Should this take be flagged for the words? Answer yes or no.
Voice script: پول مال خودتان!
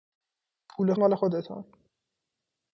no